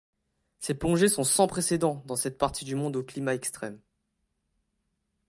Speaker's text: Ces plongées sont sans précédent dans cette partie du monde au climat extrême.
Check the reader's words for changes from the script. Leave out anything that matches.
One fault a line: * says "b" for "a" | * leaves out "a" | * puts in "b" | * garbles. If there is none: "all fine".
all fine